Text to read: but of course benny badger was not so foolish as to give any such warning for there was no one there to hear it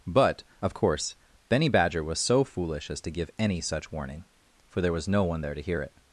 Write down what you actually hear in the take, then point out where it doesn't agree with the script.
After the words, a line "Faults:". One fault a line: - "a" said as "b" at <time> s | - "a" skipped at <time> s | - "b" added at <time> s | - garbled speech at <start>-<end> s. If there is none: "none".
but of course benny badger was so foolish as to give any such warning for there was no one there to hear it
Faults:
- "not" skipped at 2.2 s